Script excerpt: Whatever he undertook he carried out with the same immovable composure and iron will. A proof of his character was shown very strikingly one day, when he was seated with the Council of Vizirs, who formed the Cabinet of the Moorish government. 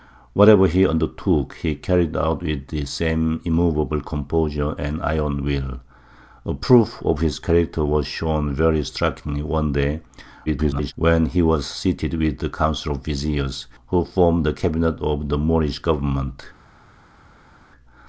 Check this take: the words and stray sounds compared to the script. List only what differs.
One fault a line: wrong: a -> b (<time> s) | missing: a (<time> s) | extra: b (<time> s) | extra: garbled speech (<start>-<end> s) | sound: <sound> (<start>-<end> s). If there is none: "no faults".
extra: garbled speech (10.5-10.9 s)